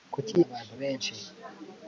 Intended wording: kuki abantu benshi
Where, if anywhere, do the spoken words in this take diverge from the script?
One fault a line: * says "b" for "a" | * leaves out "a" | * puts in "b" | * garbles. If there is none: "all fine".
all fine